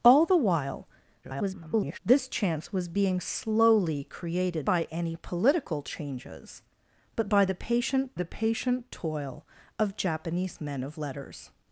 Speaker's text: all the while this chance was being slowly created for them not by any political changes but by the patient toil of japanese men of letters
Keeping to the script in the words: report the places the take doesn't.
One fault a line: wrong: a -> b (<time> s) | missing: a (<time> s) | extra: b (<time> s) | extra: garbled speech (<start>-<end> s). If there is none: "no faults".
extra: garbled speech (1.2-2.0 s)
missing: for them not (4.7 s)
extra: the patient (8.1 s)